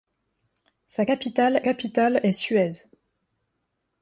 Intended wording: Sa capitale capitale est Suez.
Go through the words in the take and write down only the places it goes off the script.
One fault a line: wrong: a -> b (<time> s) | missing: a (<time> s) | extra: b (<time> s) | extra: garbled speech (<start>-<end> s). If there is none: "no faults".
no faults